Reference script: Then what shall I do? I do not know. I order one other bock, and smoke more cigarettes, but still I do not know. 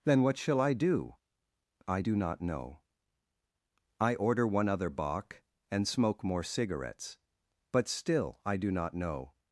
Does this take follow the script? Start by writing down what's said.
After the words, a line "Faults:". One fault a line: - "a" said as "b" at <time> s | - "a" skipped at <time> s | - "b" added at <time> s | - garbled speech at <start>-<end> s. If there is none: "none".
Then what shall I do? I do not know. I order one other bock, and smoke more cigarettes, but still I do not know.
Faults:
none